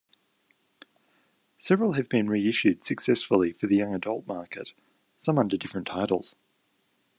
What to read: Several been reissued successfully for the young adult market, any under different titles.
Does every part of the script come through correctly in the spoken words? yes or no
no